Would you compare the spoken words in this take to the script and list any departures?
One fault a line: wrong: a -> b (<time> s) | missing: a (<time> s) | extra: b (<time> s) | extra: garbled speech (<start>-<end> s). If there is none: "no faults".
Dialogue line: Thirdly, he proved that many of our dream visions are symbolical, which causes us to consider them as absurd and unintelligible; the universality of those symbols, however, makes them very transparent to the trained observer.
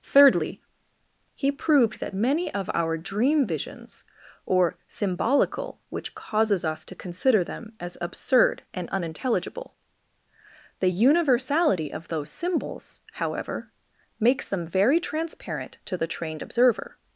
wrong: are -> or (4.5 s)